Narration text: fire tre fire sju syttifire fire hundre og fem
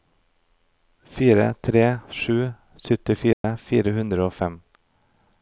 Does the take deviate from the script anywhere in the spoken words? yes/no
yes